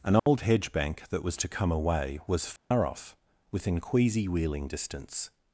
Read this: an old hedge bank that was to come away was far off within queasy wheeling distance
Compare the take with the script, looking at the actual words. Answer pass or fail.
pass